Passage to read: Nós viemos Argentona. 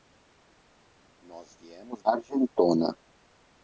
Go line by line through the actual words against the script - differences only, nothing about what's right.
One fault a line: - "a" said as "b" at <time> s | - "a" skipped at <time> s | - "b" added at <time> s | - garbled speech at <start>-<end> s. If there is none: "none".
none